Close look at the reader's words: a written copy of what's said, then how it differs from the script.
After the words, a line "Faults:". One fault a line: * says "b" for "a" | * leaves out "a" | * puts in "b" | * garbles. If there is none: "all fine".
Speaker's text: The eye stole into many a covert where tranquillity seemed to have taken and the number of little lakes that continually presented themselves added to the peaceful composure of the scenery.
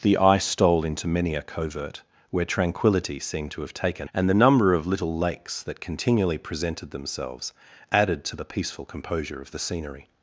The eye stole into many a covert where tranquillity seemed to have taken and the number of little lakes that continually presented themselves added to the peaceful composure of the scenery.
Faults:
all fine